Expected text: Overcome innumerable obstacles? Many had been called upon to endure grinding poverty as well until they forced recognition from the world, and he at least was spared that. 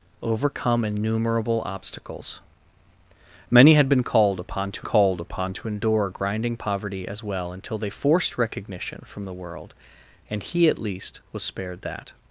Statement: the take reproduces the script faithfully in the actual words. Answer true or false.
false